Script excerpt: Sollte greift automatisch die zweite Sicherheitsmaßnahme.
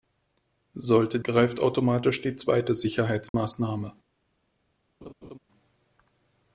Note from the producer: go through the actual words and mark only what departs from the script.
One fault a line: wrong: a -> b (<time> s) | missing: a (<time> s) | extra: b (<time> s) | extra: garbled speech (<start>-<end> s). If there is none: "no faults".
no faults